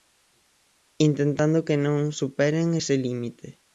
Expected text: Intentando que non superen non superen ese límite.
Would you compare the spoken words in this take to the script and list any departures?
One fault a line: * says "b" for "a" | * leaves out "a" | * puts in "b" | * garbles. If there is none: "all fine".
* leaves out "non superen"